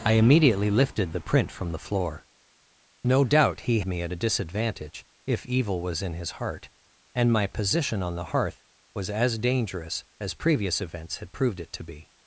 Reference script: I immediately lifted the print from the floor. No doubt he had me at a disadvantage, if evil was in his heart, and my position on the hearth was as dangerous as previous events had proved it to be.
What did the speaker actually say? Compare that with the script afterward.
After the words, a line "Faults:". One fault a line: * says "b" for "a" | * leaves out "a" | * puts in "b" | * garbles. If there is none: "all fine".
I immediately lifted the print from the floor. No doubt he me at a disadvantage, if evil was in his heart, and my position on the hearth was as dangerous as previous events had proved it to be.
Faults:
* leaves out "had"